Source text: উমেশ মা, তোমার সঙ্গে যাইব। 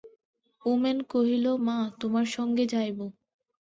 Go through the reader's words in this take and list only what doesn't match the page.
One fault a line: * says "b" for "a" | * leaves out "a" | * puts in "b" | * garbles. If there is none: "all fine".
* puts in "কহিল"